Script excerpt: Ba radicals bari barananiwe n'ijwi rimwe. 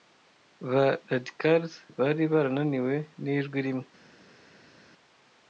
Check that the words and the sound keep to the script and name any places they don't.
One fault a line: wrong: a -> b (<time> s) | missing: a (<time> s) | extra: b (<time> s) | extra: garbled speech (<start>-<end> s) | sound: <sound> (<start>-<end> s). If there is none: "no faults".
no faults